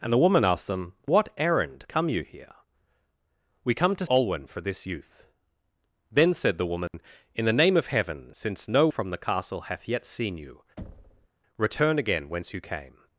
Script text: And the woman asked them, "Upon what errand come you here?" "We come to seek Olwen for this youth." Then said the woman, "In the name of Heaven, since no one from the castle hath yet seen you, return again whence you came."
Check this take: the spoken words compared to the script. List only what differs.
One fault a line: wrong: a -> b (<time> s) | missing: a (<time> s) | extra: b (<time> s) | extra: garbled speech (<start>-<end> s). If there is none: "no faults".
missing: Upon (0.9 s)
missing: seek (4.1 s)
missing: one (8.9 s)